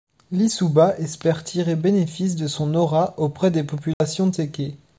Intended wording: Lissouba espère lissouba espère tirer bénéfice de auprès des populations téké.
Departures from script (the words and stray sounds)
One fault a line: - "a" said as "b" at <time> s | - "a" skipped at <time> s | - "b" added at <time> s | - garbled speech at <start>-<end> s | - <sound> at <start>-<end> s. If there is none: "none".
- "lissouba espère" skipped at 1.4 s
- "son aura" added at 2.5 s
- dropout at 3.9-4.0 s